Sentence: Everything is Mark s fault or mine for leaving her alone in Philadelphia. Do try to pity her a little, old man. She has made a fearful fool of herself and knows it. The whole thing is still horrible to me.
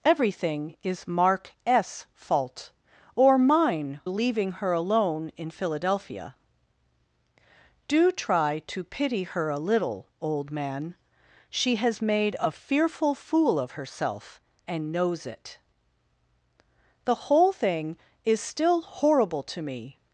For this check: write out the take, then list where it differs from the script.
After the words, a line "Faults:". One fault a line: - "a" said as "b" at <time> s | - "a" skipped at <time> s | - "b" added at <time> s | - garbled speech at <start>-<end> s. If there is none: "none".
Everything is Mark s fault or mine leaving her alone in Philadelphia. Do try to pity her a little, old man. She has made a fearful fool of herself and knows it. The whole thing is still horrible to me.
Faults:
- "for" skipped at 4.0 s